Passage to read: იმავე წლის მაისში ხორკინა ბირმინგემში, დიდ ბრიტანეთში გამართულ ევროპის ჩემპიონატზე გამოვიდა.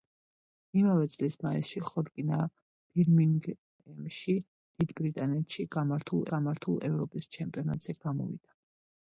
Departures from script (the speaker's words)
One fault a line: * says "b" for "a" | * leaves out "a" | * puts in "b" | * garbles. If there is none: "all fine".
* puts in "გამართულ"